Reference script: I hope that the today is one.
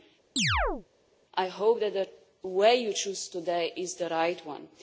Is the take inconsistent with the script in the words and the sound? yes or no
yes